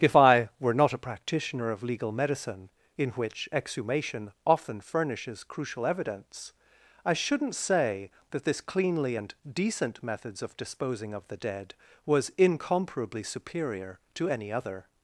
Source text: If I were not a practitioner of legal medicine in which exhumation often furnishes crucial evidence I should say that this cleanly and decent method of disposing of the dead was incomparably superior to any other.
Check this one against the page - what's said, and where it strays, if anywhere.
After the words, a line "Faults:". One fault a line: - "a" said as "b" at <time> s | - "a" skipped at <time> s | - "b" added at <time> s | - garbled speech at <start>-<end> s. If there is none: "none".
If I were not a practitioner of legal medicine in which exhumation often furnishes crucial evidence I shouldn't say that this cleanly and decent methods of disposing of the dead was incomparably superior to any other.
Faults:
- "should" said as "shouldn't" at 7.1 s
- "method" said as "methods" at 10.0 s